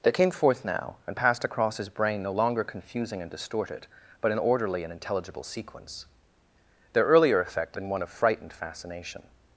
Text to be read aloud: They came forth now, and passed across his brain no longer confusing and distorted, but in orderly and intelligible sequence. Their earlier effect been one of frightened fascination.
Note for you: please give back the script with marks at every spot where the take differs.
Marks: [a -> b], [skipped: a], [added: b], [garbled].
They came forth now, and passed across his brain no longer confusing and distorted, but in orderly and intelligible sequence. Their earlier effect been one of frightened fascination.